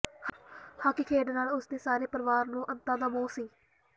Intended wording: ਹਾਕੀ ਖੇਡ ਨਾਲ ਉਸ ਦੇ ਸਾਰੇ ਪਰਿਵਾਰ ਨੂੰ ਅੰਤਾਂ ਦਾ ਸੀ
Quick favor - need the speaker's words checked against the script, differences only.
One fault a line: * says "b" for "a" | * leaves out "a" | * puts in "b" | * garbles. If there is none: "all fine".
* puts in "ਮੋਹ"